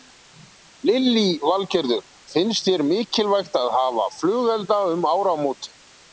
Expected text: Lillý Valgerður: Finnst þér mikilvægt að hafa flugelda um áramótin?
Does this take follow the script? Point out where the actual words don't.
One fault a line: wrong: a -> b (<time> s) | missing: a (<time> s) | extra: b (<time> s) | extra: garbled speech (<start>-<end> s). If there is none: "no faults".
no faults